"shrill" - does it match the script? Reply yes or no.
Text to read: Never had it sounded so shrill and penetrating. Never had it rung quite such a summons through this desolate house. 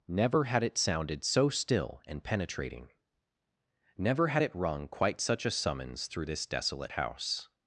no